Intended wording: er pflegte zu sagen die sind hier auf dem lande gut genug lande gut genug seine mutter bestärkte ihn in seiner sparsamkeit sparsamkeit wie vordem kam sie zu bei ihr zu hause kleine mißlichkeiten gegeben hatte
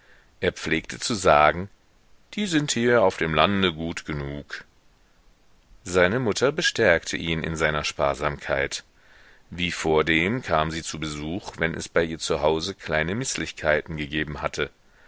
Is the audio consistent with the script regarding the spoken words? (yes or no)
no